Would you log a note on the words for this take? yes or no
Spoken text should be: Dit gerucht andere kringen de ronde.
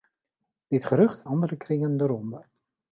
no